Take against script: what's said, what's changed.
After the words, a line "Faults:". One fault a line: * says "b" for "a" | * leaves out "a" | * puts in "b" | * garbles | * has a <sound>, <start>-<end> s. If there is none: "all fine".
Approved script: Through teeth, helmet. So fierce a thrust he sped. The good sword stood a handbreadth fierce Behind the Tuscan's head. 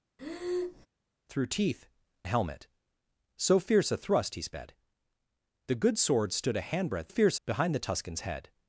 Through teeth, helmet. So fierce a thrust he sped. The good sword stood a handbreadth fierce Behind the Tuscan's head.
Faults:
* has a breath, 0.2-0.9 s